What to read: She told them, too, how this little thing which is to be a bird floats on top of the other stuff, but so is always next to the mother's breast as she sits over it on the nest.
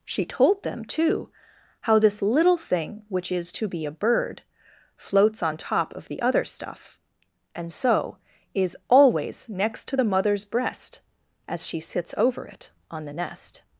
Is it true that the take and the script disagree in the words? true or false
true